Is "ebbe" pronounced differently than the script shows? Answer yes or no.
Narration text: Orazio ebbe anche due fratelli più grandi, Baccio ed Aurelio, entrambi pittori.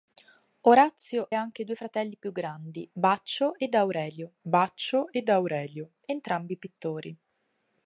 yes